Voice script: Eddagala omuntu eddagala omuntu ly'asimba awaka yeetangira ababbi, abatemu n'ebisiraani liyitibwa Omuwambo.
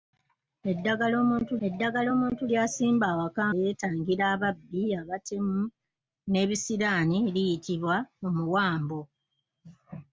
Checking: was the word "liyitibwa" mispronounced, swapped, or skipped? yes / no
no